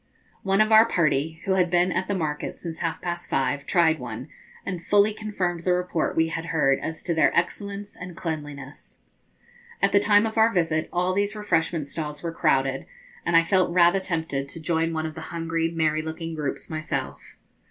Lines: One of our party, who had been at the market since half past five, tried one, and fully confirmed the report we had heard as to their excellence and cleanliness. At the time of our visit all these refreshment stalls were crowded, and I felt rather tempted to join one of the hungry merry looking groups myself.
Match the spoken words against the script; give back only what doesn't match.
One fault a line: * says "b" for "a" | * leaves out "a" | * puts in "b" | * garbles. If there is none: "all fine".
all fine